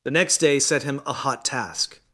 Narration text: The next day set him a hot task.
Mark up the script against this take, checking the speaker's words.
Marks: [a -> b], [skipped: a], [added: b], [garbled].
The next day set him a hot task.